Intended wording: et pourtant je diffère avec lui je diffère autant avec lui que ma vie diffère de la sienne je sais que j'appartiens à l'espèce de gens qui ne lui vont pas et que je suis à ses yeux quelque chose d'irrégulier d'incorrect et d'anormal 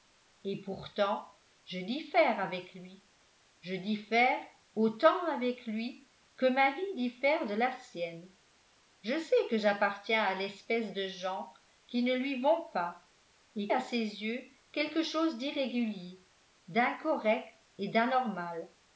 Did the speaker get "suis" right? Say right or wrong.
wrong